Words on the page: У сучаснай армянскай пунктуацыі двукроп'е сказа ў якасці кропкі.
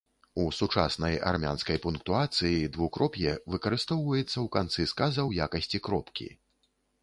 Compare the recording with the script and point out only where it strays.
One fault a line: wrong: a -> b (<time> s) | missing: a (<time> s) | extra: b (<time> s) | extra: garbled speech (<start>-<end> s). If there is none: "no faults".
extra: выкарыстоўваецца ў канцы (3.6 s)